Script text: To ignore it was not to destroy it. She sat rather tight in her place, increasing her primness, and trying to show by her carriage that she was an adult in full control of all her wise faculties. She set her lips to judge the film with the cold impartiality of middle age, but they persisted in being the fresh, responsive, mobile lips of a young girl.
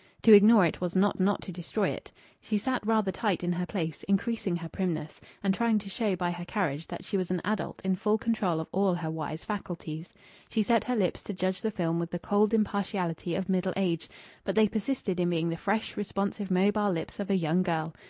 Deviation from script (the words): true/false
true